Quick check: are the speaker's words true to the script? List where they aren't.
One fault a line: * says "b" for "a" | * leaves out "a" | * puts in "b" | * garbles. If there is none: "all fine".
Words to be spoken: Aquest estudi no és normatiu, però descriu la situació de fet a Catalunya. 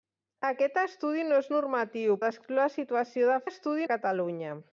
* leaves out "però"
* says "estudi" for "fet"